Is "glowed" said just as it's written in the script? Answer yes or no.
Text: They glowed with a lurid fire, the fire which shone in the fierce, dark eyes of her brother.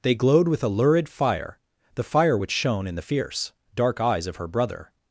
yes